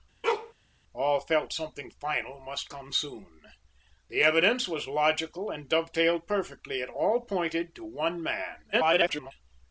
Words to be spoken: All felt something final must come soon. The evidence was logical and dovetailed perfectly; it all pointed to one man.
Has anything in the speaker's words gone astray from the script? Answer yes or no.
yes